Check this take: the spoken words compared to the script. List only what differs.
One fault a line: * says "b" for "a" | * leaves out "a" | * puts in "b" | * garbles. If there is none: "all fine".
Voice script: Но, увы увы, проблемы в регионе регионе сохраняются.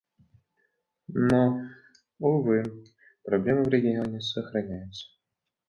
* leaves out "увы"
* leaves out "регионе"